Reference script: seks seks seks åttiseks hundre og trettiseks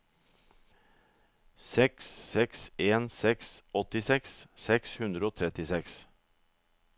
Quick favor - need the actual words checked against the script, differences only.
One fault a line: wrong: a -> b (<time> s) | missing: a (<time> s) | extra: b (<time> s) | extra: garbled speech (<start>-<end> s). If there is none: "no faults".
extra: en (2.9 s)
extra: seks (4.7 s)